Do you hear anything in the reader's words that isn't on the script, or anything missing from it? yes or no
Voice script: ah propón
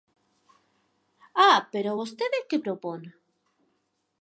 yes